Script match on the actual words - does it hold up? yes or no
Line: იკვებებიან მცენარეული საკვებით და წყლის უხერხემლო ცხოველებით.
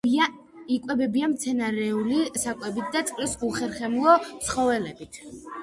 yes